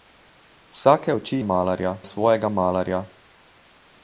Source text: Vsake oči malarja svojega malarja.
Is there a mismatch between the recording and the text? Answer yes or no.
no